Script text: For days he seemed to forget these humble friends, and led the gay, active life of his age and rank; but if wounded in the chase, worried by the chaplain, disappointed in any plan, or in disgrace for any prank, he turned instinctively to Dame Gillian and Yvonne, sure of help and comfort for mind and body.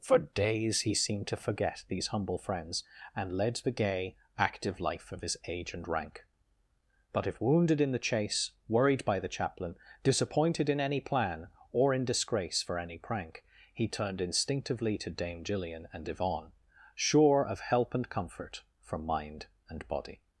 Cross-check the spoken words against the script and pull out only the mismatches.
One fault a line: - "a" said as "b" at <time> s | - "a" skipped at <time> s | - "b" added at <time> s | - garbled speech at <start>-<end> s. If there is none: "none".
none